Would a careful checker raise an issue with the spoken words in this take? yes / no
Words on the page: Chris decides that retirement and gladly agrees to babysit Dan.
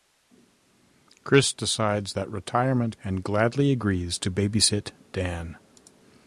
no